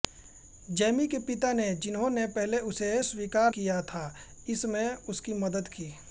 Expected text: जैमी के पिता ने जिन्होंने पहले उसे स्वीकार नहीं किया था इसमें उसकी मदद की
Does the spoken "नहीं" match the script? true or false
false